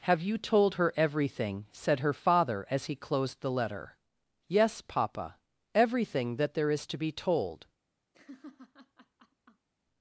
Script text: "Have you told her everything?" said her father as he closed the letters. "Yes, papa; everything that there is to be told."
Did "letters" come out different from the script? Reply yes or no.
yes